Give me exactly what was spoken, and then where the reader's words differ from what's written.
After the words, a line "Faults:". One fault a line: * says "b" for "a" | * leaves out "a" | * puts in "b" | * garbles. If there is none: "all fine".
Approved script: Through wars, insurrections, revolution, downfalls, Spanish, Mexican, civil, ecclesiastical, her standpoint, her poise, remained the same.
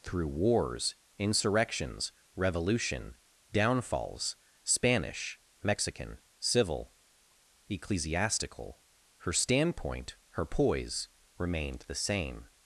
Through wars, insurrections, revolution, downfalls, Spanish, Mexican, civil, ecclesiastical, her standpoint, her poise, remained the same.
Faults:
all fine